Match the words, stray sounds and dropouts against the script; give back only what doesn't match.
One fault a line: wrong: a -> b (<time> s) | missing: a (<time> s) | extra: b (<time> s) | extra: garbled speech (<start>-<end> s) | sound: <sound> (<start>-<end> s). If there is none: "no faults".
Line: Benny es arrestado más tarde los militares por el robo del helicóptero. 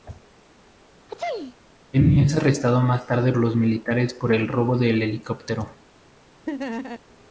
sound: sneeze (1.1-1.5 s)
sound: laugh (6.5-7.0 s)